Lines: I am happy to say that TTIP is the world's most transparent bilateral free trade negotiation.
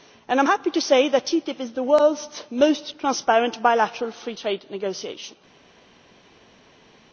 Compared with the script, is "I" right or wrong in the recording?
right